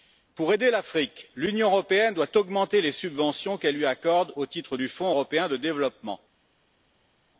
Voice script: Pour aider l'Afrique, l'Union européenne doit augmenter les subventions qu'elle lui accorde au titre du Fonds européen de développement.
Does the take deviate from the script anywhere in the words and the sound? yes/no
no